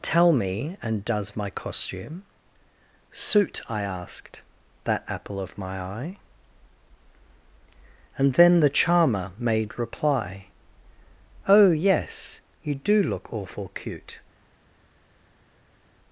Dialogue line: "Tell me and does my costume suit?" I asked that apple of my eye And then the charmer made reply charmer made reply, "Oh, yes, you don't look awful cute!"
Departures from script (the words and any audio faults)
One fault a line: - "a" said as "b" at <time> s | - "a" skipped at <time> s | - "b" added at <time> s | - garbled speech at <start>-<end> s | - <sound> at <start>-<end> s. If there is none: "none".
- "charmer made reply" skipped at 10.5 s
- "don't" said as "do" at 12.7 s